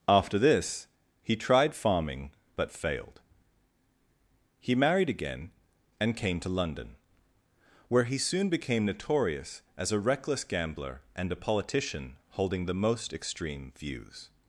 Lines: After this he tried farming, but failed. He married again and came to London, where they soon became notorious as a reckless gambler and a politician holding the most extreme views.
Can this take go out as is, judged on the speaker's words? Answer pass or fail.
fail